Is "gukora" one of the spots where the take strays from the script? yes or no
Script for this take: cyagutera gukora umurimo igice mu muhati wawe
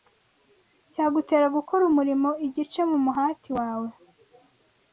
no